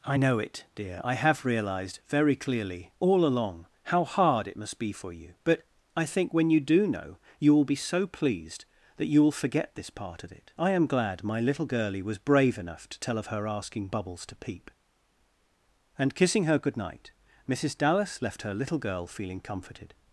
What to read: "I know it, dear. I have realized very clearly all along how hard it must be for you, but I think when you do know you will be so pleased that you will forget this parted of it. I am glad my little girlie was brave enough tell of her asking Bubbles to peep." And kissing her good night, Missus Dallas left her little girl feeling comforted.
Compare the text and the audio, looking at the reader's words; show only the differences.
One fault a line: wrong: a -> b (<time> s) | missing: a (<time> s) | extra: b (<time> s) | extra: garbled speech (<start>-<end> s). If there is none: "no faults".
wrong: parted -> part (9.9 s)
extra: to (12.9 s)